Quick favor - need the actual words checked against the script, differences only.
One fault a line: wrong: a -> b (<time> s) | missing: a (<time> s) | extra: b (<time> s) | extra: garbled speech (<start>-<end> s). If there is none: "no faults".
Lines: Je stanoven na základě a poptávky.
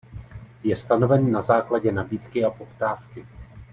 extra: nabídky (1.9 s)